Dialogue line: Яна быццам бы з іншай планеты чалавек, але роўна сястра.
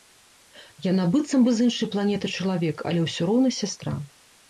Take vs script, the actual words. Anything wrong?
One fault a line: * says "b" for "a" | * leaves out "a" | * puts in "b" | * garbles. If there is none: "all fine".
* puts in "ўсё"